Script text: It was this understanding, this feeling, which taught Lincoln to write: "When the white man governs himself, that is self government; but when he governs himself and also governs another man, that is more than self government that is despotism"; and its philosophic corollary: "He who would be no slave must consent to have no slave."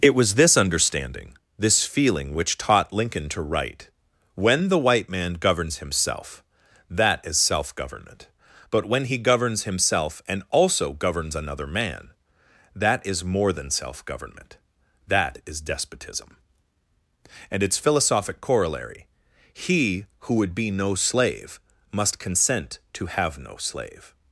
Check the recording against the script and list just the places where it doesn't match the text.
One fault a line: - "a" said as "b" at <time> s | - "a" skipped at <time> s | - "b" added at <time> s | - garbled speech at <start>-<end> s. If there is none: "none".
none